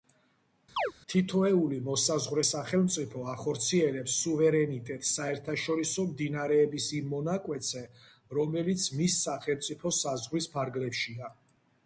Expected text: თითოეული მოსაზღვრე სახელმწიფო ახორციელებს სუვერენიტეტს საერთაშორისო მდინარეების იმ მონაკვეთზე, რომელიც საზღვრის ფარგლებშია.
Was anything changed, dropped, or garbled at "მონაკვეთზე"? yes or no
no